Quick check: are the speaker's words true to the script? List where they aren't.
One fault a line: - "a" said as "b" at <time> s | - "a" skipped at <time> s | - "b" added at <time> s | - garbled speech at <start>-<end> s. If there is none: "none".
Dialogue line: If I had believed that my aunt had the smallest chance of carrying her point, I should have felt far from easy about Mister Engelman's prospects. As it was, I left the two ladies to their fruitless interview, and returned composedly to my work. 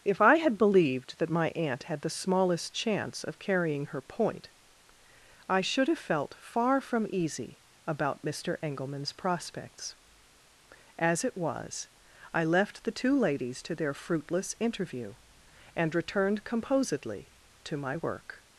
none